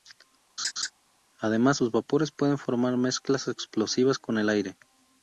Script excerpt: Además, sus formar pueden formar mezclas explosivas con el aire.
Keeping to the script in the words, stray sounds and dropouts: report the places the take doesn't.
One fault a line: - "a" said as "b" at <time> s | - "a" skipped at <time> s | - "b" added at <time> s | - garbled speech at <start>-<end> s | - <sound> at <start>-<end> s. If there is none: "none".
- laugh at 0.6-0.9 s
- "formar" said as "vapores" at 1.9 s